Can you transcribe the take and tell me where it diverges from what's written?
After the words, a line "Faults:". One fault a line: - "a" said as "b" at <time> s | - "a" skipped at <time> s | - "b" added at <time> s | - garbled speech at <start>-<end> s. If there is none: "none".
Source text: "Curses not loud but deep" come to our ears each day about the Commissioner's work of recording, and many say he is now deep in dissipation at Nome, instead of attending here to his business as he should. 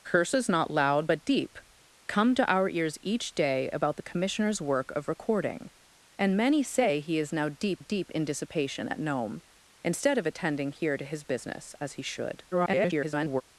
"Curses not loud but deep" come to our ears each day about the Commissioner's work of recording, and many say he is now deep deep in dissipation at Nome, instead of attending here to his business as he should. [garbled]
Faults:
- "deep" added at 7.8 s
- garbled speech at 12.5-13.4 s